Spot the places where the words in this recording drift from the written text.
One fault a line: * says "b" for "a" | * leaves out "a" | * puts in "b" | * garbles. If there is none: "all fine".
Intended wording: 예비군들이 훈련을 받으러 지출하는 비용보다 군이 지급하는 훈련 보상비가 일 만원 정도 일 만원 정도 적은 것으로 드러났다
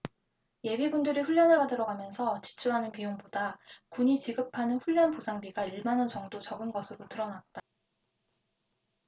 * puts in "가면서"
* leaves out "일 만원 정도"